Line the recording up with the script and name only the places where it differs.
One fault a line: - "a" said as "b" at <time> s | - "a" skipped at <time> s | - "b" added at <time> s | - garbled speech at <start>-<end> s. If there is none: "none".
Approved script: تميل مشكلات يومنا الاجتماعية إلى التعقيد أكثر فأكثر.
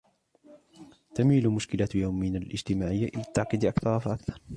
none